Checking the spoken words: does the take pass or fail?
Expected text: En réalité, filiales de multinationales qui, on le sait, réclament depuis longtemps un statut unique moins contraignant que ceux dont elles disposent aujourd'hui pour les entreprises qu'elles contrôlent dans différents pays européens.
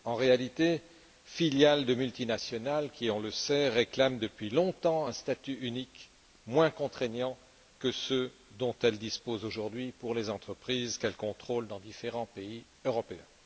pass